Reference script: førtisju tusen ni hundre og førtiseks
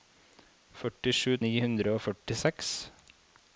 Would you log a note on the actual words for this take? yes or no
yes